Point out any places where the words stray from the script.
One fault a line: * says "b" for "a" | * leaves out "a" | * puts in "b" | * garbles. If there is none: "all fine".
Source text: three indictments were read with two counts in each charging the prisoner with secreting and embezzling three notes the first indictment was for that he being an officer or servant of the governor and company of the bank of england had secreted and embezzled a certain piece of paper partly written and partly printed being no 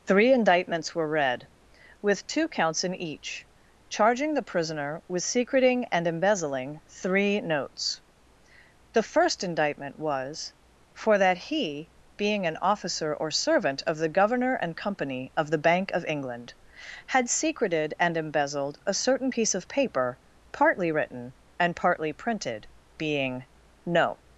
all fine